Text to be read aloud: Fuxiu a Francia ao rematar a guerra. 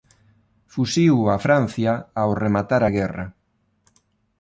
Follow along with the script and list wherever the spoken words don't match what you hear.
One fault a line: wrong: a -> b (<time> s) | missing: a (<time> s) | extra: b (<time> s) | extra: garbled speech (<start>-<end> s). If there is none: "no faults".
no faults